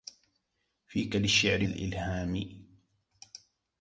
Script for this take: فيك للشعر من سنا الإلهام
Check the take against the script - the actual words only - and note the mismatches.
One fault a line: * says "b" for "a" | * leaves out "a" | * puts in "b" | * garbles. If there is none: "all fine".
* leaves out "من سنا"